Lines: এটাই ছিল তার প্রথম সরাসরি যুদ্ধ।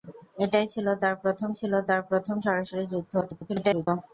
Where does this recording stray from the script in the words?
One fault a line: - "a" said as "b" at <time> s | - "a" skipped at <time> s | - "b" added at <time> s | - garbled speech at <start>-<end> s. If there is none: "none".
- "ছিল তার প্রথম" added at 1.5 s
- garbled speech at 3.2-3.9 s